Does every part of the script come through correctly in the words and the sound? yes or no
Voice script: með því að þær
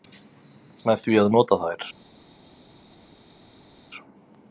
no